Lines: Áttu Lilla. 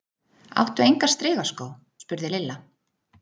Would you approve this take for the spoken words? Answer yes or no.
no